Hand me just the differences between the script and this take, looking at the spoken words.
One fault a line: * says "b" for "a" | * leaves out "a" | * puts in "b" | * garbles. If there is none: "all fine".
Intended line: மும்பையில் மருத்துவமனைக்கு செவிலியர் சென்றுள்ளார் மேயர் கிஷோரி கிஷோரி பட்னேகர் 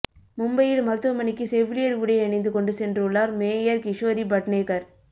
* puts in "உடை அணிந்து கொண்டு"
* leaves out "கிஷோரி"